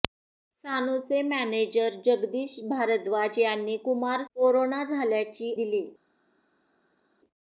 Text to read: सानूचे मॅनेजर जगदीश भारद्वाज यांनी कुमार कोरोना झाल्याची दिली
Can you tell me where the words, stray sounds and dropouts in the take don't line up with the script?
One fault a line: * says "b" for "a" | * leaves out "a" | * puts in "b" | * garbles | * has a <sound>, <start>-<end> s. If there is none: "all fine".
all fine